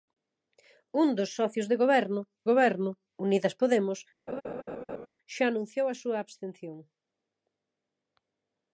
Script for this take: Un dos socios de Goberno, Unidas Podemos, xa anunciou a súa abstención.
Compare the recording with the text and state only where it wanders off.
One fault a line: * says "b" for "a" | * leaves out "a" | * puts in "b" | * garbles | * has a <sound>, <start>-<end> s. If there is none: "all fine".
* puts in "Goberno"
* has a laugh, 4.3-5.1 s